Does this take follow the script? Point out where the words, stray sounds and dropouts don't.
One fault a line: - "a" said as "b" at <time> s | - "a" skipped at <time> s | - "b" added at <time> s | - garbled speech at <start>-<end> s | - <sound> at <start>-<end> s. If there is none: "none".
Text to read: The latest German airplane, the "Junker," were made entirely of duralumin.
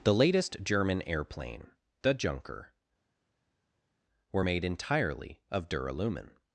none